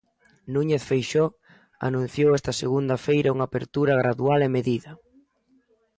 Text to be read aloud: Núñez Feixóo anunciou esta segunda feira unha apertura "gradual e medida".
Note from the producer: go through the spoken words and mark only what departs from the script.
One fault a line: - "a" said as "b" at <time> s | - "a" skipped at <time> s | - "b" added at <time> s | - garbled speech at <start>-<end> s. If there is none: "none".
none